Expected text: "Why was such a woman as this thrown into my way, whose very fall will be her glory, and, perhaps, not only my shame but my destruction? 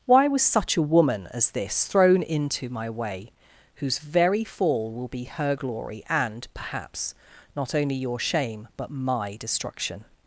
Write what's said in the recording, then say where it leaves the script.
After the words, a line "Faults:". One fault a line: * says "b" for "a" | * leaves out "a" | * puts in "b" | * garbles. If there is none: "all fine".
"Why was such a woman as this thrown into my way, whose very fall will be her glory, and, perhaps, not only your shame but my destruction?
Faults:
* says "your" for "my"